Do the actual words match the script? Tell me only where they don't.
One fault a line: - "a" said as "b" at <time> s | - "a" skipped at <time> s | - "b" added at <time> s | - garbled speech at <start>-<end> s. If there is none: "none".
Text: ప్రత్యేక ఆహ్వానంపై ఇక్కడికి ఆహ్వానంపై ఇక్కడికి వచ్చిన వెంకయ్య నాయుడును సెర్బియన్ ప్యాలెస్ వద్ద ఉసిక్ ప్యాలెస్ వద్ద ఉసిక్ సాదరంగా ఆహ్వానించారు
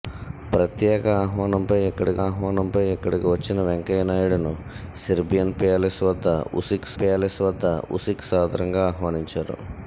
none